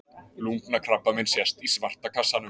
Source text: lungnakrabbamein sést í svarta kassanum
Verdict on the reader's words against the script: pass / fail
pass